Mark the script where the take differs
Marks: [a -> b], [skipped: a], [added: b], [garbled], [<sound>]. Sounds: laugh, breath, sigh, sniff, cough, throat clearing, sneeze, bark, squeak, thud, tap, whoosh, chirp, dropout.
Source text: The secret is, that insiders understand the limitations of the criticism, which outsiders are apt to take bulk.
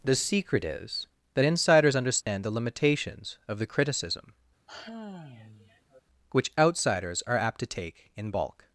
The secret is, that insiders understand [dropout] the limitations of the criticism, [sigh] which outsiders are apt to take [added: in] bulk.